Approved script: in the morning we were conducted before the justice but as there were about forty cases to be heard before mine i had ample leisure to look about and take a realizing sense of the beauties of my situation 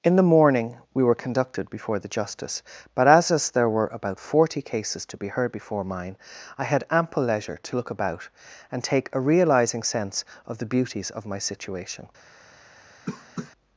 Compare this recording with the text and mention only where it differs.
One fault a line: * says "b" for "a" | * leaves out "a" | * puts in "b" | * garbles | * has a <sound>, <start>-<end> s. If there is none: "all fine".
* puts in "as"
* has a cough, 13.1-13.5 s